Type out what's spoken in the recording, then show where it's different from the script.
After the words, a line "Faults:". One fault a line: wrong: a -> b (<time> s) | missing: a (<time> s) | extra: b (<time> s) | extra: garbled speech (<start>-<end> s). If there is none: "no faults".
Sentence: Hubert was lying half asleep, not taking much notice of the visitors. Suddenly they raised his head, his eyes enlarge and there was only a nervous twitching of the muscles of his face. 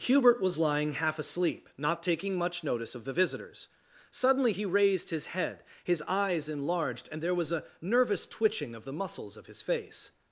Hubert was lying half asleep, not taking much notice of the visitors. Suddenly he raised his head, his eyes enlarged and there was a nervous twitching of the muscles of his face.
Faults:
wrong: they -> he (4.5 s)
wrong: enlarge -> enlarged (6.5 s)
missing: only (7.5 s)